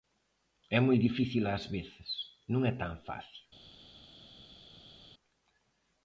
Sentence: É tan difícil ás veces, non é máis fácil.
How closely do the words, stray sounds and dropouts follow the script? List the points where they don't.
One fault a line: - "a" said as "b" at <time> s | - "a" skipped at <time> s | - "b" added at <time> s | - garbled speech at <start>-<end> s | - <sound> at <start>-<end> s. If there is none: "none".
- "tan" said as "moi" at 0.8 s
- "máis" said as "tan" at 2.8 s